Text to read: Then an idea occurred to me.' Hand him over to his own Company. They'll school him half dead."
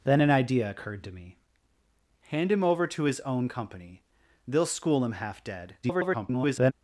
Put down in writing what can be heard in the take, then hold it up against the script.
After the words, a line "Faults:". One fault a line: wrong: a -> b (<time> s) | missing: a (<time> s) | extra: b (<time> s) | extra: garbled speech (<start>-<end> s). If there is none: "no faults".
Then an idea occurred to me.' Hand him over to his own Company. They'll school him half dead." [garbled]
Faults:
extra: garbled speech (5.8-6.7 s)